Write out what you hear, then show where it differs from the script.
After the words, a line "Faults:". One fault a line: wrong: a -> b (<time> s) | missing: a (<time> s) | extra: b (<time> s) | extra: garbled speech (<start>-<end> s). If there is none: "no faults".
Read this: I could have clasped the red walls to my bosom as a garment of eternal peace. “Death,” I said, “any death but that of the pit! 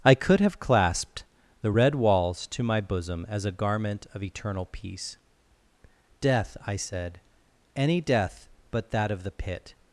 I could have clasped the red walls to my bosom as a garment of eternal peace. “Death,” I said, “any death but that of the pit!
Faults:
no faults